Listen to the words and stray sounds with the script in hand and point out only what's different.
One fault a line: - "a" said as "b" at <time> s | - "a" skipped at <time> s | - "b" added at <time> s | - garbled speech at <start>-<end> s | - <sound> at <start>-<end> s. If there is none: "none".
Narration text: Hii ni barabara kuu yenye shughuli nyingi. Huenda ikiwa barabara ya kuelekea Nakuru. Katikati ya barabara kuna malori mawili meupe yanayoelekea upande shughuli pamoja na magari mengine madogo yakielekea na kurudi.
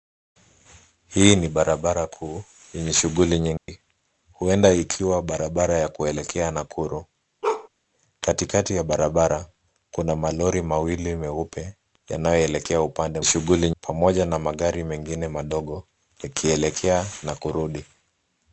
- dropout at 3.6-3.7 s
- bark at 7.4-7.7 s